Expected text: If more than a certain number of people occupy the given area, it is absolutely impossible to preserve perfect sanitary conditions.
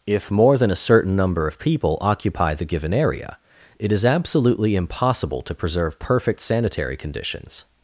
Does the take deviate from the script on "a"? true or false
false